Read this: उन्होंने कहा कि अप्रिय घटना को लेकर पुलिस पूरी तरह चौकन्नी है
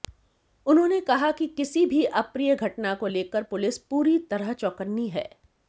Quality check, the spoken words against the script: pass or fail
fail